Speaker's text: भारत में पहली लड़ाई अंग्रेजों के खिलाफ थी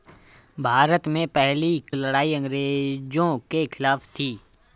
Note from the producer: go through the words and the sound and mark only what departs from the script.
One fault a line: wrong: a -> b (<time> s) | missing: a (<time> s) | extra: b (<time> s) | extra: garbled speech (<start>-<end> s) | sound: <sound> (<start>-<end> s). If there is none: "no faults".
no faults